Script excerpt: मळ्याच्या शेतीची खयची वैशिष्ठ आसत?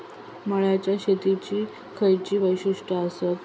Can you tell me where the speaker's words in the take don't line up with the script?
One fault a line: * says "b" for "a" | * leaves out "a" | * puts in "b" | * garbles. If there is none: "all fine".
all fine